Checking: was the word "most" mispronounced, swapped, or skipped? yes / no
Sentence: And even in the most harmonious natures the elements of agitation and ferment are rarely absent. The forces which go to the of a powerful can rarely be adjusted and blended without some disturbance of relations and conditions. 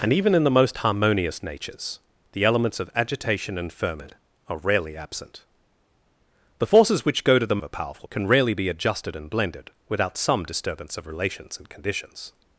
no